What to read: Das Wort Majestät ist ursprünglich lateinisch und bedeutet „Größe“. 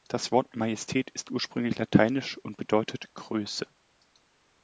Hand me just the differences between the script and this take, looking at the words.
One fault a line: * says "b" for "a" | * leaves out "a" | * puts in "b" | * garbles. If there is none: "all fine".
all fine